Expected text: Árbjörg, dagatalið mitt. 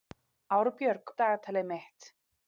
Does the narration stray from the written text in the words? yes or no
no